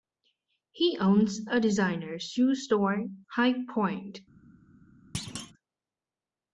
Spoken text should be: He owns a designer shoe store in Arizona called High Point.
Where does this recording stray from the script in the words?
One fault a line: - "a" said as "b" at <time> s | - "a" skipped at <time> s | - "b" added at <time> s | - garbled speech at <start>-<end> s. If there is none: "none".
- "in Arizona called" skipped at 3.0 s